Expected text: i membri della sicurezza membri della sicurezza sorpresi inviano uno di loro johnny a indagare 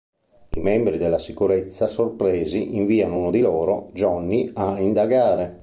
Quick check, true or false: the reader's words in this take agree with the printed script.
false